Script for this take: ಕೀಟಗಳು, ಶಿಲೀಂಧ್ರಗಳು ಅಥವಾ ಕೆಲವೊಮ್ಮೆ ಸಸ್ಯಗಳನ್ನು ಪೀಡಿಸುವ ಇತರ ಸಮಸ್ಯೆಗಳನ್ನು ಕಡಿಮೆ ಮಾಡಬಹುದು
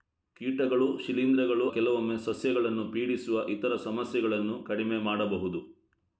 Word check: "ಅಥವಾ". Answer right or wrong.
wrong